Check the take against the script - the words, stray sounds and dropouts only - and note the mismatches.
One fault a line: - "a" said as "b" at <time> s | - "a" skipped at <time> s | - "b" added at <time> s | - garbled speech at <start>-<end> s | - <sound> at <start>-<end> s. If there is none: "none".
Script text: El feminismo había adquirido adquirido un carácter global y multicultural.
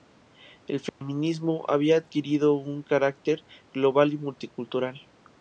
- dropout at 0.9-1.0 s
- "adquirido" skipped at 2.5 s